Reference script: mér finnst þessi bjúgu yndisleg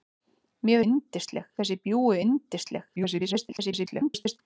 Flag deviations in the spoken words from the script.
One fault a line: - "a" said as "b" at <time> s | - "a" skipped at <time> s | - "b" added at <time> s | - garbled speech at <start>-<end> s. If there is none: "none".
- "finnst" said as "yndisleg" at 0.8 s
- garbled speech at 3.0-4.4 s